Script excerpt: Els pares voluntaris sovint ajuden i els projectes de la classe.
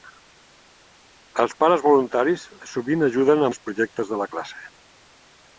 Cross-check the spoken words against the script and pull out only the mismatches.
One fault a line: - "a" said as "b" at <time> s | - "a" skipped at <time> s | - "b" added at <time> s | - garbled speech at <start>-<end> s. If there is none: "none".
none